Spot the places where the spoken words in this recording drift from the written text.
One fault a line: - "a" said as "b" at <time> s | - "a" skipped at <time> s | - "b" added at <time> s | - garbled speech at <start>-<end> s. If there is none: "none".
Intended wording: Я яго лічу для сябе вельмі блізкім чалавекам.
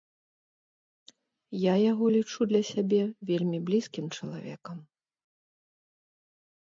none